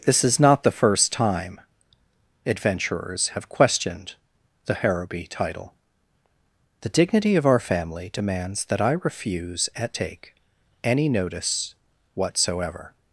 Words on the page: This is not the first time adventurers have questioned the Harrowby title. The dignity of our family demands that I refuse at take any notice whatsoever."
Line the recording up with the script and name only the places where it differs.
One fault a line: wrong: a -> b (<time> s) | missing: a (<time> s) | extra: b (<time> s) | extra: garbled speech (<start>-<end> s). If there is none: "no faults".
no faults